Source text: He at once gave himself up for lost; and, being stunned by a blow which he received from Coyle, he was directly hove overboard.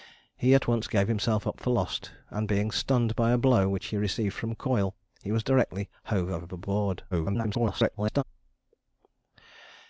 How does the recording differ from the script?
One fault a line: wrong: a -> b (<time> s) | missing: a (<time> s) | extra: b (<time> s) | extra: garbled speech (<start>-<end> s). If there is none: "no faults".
extra: garbled speech (7.1-8.2 s)